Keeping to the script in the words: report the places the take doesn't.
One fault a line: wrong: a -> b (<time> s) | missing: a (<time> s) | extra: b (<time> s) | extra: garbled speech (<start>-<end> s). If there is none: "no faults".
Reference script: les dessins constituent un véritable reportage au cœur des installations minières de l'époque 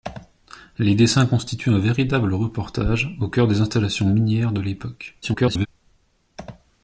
extra: garbled speech (5.2-5.7 s)